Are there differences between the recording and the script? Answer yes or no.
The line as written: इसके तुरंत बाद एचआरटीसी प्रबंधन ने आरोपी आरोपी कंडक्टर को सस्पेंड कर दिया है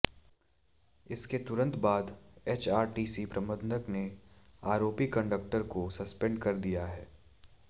yes